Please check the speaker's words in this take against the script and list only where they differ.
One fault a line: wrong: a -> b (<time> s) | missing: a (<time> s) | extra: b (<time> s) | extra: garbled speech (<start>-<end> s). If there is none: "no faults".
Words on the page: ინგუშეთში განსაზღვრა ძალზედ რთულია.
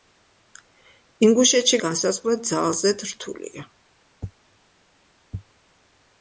no faults